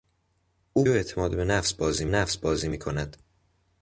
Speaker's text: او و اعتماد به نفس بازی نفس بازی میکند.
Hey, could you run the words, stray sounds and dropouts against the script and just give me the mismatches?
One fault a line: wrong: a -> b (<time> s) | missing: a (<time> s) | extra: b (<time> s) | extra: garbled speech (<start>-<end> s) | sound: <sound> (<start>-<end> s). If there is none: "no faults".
no faults